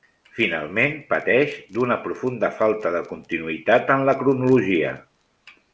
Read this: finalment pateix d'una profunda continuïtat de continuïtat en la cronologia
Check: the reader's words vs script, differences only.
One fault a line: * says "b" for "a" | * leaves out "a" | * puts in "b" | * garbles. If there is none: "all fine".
* says "falta" for "continuïtat"